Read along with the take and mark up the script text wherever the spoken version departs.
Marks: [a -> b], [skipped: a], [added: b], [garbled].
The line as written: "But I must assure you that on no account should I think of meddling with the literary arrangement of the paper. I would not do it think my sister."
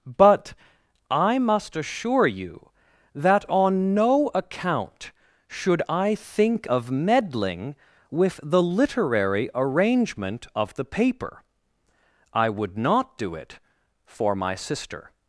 "But I must assure you that on no account should I think of meddling with the literary arrangement of the paper. I would not do it [think -> for] my sister."